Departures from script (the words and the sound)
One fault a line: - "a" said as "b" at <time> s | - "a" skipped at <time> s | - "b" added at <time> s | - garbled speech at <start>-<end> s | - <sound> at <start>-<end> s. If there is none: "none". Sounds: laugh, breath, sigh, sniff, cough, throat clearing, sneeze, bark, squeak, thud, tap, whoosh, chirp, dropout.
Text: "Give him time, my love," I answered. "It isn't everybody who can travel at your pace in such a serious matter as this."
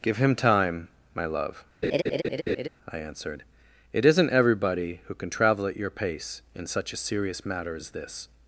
- laugh at 1.8-2.7 s